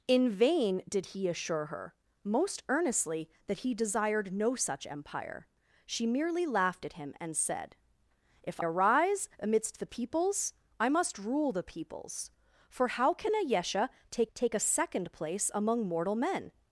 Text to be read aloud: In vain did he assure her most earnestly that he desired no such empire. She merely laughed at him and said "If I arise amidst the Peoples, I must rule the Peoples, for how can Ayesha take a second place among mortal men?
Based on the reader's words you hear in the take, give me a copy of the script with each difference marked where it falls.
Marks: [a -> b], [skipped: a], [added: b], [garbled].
In vain did he assure her most earnestly that he desired no such empire. She merely laughed at him and said "If [skipped: I] arise amidst the Peoples, I must rule the Peoples, for how can Ayesha take [added: take] a second place among mortal men?